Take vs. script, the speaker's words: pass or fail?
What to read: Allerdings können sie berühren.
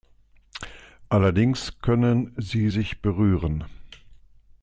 fail